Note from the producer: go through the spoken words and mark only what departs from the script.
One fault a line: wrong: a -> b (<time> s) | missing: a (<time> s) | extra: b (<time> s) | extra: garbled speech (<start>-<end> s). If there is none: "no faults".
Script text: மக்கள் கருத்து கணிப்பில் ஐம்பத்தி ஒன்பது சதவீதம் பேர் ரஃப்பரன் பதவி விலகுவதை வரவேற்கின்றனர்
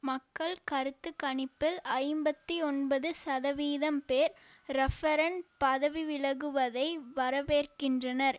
no faults